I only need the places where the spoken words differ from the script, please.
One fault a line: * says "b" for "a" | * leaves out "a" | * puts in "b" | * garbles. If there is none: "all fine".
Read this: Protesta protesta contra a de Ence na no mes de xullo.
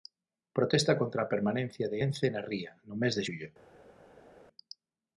* leaves out "protesta"
* puts in "permanencia"
* puts in "ría"